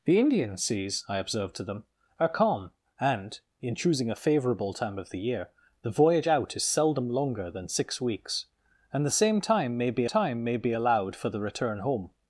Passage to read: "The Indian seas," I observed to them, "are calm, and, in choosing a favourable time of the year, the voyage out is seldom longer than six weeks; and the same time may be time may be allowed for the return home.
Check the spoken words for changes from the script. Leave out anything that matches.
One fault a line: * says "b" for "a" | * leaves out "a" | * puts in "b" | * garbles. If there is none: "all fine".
all fine